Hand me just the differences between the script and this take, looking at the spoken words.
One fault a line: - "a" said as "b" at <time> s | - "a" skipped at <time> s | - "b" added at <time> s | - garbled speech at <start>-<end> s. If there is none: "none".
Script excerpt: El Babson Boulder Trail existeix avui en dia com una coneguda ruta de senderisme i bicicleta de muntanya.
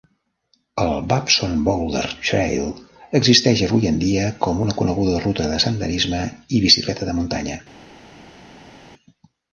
none